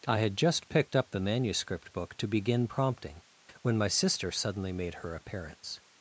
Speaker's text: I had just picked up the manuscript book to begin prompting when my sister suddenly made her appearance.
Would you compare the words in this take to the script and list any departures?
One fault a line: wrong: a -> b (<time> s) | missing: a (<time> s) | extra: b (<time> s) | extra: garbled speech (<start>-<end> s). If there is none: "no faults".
no faults